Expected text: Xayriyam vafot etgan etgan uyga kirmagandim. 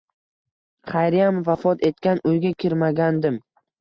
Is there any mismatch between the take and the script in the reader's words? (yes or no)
yes